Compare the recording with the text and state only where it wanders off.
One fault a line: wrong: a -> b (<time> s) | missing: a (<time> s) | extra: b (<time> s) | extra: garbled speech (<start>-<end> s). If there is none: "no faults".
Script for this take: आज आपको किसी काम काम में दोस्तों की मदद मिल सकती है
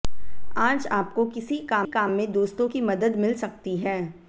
no faults